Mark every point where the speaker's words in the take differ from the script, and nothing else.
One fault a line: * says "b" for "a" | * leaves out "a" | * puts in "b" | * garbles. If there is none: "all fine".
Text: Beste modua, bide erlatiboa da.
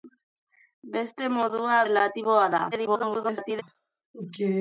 * leaves out "bide"
* garbles